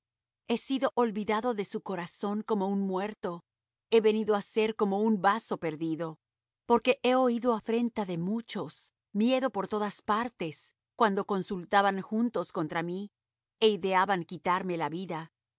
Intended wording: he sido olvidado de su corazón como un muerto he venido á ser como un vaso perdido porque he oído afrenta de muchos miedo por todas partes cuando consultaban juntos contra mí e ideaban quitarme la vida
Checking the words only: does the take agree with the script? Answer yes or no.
yes